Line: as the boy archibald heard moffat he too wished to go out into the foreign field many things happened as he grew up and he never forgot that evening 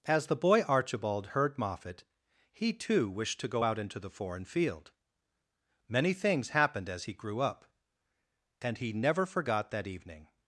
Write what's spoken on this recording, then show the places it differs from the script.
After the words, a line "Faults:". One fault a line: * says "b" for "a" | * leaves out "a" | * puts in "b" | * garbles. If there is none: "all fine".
as the boy archibald heard moffat he too wished to go out into the foreign field many things happened as he grew up and he never forgot that evening
Faults:
all fine